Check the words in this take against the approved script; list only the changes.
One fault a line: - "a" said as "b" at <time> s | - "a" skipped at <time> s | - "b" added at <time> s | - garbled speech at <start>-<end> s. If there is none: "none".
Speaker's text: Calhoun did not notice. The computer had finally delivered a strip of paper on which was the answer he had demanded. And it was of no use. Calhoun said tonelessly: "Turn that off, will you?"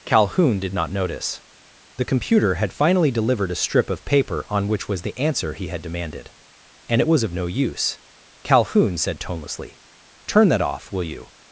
none